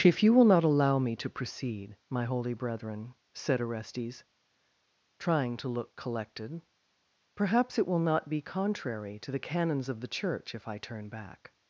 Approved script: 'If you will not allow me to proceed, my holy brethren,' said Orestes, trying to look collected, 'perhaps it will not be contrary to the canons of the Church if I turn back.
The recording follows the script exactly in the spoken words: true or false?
true